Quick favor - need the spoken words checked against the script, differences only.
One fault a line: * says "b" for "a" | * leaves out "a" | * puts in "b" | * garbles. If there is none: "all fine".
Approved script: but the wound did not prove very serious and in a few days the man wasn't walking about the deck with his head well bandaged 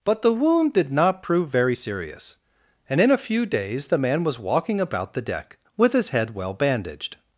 * says "was" for "wasn't"